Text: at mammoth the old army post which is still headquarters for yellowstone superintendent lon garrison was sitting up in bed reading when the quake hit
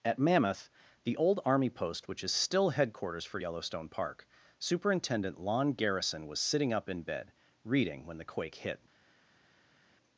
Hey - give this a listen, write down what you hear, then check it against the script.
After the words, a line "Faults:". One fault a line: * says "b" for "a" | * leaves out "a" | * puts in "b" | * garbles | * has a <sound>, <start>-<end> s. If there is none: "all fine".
at mammoth the old army post which is still headquarters for yellowstone park superintendent lon garrison was sitting up in bed reading when the quake hit
Faults:
* puts in "park"